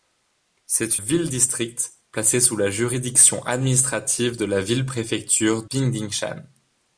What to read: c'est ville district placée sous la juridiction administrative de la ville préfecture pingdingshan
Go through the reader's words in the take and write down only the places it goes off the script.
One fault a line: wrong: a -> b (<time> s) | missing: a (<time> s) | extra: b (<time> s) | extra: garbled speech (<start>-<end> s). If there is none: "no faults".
no faults